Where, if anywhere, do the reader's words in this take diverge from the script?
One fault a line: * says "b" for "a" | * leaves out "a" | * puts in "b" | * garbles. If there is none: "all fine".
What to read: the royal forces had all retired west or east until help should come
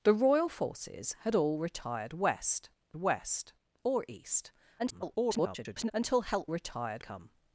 * puts in "west"
* garbles
* says "retired" for "should"